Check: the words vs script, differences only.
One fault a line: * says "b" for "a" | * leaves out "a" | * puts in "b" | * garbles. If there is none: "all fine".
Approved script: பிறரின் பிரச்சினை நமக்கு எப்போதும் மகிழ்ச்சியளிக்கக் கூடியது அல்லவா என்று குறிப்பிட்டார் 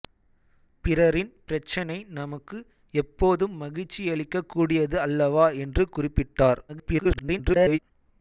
* garbles